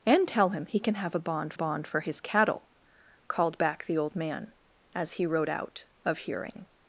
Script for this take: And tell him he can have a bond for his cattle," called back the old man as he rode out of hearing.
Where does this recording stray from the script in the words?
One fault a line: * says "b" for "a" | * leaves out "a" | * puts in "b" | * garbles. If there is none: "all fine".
* puts in "bond"